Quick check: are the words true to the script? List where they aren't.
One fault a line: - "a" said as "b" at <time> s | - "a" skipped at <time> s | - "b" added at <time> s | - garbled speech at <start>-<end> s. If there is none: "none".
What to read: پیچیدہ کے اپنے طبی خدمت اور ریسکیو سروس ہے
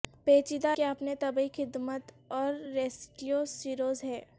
none